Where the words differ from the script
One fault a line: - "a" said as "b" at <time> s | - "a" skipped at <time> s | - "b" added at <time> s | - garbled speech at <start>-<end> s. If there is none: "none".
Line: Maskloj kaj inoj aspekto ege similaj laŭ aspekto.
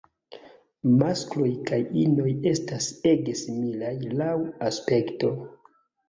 - "aspekto" said as "estas" at 2.5 s